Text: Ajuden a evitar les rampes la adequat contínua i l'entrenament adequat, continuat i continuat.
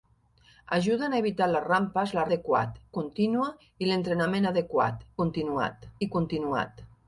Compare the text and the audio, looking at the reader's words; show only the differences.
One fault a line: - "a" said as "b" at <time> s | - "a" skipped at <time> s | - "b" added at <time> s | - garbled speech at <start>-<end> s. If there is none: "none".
none